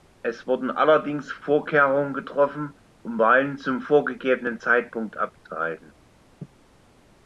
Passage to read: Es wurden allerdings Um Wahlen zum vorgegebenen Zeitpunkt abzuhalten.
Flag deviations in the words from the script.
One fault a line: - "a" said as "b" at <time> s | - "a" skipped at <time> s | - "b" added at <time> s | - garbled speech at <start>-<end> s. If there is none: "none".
- "Vorkehrungen getroffen" added at 1.3 s